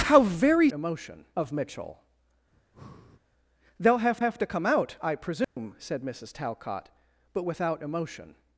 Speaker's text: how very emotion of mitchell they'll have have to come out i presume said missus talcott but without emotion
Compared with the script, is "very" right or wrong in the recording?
right